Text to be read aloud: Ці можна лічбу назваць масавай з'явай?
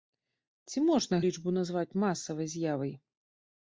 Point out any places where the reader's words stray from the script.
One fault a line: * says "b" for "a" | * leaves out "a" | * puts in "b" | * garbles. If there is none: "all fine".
all fine